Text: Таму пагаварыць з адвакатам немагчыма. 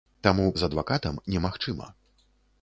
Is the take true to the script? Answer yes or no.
no